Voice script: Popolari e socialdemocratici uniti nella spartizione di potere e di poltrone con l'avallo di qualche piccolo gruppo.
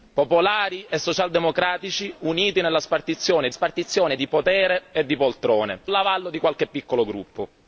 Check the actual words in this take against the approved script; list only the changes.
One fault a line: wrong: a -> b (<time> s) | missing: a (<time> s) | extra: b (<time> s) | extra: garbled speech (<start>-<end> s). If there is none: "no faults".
extra: spartizione (3.5 s)
missing: con (5.8 s)